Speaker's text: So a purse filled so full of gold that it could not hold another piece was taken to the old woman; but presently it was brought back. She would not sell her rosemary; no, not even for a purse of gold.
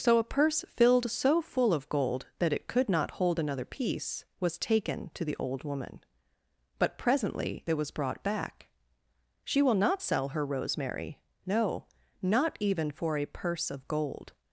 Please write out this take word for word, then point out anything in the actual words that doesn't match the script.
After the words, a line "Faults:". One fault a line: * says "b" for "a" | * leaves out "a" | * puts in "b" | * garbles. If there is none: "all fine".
So a purse filled so full of gold that it could not hold another piece was taken to the old woman; but presently it was brought back. She will not sell her rosemary; no, not even for a purse of gold.
Faults:
* says "will" for "would"